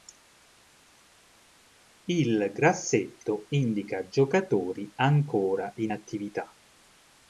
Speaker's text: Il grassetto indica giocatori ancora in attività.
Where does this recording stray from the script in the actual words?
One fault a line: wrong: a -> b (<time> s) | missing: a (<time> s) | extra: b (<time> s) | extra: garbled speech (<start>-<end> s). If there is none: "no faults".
no faults